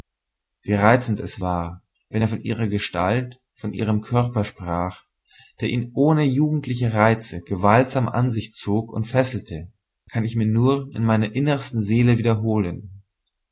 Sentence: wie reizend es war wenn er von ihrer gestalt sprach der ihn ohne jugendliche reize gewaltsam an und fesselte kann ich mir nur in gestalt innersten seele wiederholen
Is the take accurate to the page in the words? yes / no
no